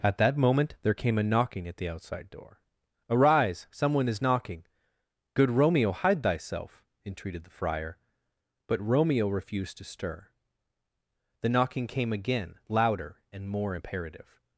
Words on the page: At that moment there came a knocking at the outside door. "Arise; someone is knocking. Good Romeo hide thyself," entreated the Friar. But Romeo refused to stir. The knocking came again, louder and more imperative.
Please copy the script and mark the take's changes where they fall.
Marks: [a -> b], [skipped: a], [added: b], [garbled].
At that moment there came a knocking at the outside door. "Arise; someone is knocking. Good Romeo hide thyself," entreated the Friar. But Romeo refused to stir. The knocking came again, louder and more imperative.